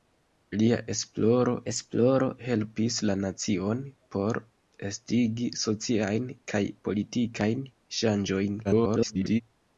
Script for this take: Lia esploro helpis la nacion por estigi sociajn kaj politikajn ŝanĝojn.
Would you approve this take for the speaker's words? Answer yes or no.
no